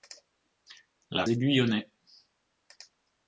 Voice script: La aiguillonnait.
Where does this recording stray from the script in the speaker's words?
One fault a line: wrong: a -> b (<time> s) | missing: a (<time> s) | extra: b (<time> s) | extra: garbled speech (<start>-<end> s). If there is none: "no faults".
no faults